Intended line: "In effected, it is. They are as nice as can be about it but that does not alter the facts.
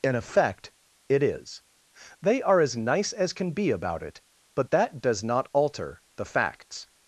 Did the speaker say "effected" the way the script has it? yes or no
no